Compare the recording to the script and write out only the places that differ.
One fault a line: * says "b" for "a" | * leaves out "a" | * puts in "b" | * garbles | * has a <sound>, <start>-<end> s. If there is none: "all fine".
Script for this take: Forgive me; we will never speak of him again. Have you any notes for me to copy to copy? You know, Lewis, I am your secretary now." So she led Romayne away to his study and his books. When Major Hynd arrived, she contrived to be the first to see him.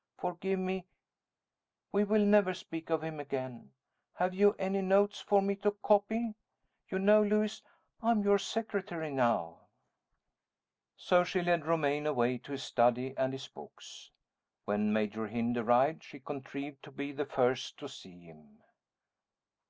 * leaves out "to copy"